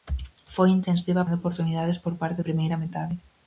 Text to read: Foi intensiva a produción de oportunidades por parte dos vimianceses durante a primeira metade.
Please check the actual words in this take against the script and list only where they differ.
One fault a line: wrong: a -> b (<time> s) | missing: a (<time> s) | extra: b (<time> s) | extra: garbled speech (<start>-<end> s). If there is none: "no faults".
missing: produción (1.3 s)
missing: dos vimianceses durante (2.4 s)